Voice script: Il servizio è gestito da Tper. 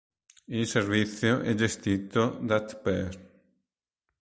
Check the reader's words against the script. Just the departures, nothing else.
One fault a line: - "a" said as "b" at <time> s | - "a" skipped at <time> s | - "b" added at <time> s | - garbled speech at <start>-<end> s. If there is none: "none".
none